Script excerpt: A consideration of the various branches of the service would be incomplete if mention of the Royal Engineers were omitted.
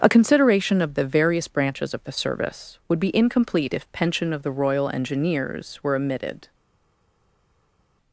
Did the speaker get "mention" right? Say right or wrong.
wrong